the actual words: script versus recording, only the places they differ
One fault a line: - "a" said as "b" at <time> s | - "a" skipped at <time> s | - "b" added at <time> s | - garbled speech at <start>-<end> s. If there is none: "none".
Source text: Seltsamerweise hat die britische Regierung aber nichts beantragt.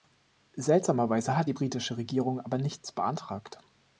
none